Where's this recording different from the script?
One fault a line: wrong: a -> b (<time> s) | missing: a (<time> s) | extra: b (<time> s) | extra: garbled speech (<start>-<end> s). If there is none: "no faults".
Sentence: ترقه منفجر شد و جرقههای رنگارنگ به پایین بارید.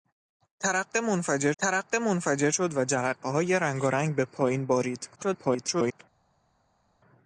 extra: ترقه منفجر (1.6 s)
extra: garbled speech (5.1-6.0 s)